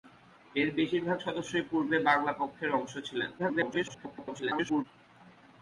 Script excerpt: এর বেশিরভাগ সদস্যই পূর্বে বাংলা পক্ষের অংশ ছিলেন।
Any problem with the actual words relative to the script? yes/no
yes